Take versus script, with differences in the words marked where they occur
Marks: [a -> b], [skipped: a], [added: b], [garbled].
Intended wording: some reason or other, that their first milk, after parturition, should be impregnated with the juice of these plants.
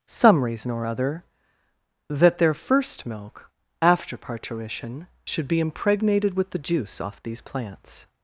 some reason or other, that their first milk, after parturition, should be impregnated with the juice [of -> off] these plants.